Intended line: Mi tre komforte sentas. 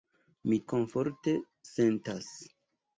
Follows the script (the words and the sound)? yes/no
no